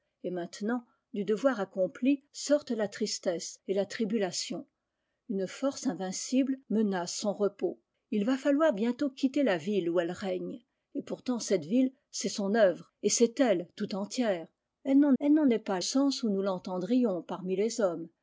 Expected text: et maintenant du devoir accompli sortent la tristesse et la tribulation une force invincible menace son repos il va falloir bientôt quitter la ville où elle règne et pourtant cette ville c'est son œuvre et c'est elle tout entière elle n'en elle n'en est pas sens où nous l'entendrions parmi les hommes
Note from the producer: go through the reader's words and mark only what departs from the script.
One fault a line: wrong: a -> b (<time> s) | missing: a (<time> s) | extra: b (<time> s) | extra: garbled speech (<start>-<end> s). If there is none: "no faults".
no faults